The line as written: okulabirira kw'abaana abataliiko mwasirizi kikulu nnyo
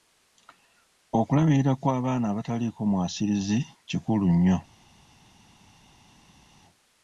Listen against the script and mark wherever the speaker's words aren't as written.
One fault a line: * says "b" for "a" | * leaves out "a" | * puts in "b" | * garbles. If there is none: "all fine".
all fine